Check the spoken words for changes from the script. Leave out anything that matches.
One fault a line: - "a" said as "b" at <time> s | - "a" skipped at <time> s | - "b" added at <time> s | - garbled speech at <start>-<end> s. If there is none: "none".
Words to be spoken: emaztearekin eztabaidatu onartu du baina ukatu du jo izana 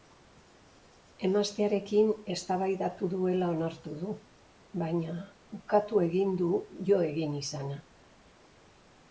- "duela" added at 3.1 s
- "egin" added at 6.1 s
- "egin" added at 7.1 s